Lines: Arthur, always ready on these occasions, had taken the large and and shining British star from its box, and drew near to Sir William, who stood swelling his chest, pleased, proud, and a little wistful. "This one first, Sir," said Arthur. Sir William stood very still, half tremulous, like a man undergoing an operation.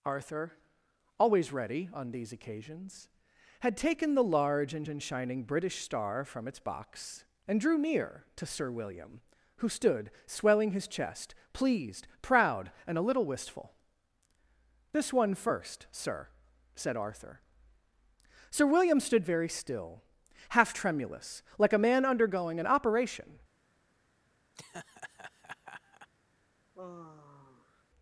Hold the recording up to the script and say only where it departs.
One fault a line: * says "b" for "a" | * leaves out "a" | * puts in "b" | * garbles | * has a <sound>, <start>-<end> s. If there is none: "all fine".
* has a laugh, 24.5-26.1 s
* has a sigh, 26.7-27.8 s